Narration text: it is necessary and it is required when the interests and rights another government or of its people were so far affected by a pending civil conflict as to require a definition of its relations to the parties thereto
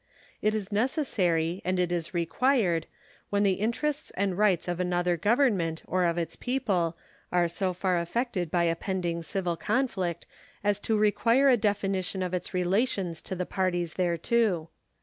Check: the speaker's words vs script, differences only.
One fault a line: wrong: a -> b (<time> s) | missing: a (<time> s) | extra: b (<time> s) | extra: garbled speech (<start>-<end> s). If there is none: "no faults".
extra: of (4.7 s)
wrong: were -> are (7.3 s)